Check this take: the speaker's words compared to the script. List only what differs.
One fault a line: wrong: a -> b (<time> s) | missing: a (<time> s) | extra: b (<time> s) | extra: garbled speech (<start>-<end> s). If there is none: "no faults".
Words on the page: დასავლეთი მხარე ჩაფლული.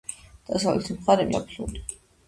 no faults